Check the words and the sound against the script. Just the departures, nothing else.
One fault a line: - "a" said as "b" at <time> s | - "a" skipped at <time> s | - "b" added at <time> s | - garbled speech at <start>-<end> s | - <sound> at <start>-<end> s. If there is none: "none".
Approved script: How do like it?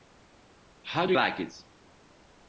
none